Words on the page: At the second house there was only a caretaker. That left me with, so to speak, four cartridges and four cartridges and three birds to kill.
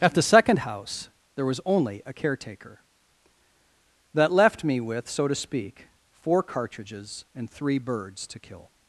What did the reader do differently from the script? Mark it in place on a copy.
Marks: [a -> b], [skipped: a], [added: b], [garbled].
At the second house there was only a caretaker. That left me with, so to speak, four cartridges and [skipped: four cartridges and] three birds to kill.